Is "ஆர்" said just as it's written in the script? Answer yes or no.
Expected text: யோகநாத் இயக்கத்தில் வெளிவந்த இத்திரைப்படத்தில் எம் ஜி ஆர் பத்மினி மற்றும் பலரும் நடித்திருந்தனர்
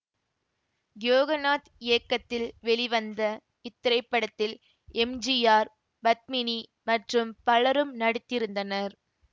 yes